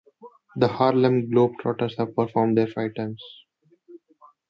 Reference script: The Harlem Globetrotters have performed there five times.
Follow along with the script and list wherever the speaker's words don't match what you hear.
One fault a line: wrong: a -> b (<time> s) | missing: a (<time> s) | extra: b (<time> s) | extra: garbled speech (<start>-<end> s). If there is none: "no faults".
no faults